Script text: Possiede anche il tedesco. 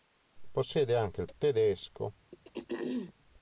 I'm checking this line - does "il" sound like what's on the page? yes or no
yes